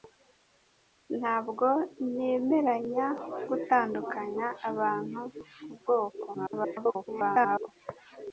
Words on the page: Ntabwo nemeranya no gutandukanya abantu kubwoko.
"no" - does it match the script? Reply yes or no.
no